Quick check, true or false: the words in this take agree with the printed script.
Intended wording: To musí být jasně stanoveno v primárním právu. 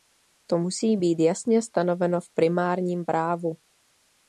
true